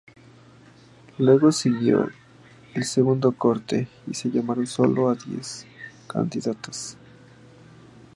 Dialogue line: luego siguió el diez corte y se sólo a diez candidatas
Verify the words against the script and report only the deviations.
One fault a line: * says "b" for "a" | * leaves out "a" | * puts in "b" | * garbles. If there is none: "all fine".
* says "segundo" for "diez"
* puts in "llamaron"